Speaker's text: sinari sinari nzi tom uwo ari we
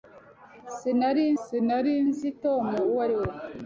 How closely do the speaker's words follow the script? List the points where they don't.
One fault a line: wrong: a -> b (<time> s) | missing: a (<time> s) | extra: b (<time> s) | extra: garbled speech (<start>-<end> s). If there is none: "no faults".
no faults